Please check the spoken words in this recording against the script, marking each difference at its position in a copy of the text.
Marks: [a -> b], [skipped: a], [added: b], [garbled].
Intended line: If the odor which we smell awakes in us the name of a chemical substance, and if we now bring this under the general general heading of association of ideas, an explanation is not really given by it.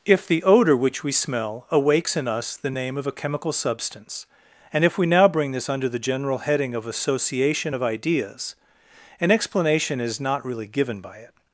If the odor which we smell awakes in us the name of a chemical substance, and if we now bring this under the general [skipped: general] heading of association of ideas, an explanation is not really given by it.